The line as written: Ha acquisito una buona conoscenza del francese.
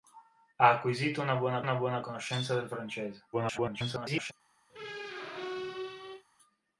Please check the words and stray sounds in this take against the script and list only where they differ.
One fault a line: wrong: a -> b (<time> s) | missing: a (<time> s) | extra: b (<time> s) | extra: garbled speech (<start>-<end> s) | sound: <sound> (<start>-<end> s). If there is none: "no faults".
extra: una buona (1.6 s)
extra: garbled speech (3.3-4.3 s)
sound: squeak (4.7-6.2 s)